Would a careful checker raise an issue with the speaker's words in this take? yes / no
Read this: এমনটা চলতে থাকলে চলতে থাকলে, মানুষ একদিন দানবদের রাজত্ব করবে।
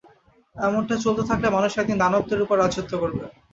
yes